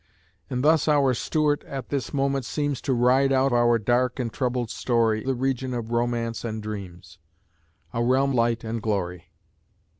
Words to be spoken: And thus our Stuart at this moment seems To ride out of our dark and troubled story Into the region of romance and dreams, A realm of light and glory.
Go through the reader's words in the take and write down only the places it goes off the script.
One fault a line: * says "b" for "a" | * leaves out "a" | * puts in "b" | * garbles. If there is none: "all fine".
* leaves out "of"
* leaves out "Into"
* leaves out "of"